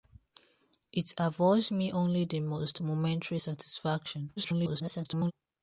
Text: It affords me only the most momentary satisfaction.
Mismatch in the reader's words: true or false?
true